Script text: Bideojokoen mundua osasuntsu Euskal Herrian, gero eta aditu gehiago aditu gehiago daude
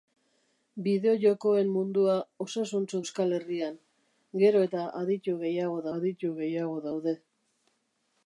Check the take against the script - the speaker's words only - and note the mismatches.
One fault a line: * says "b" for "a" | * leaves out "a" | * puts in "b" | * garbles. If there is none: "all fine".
all fine